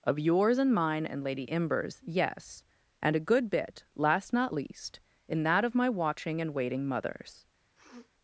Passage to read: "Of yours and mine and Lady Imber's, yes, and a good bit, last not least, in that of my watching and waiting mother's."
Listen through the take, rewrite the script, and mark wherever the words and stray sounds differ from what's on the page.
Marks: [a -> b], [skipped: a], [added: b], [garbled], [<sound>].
"Of yours and mine and Lady Imber's, yes, and a good bit, last not least, in that of my watching and waiting mother's." [sniff]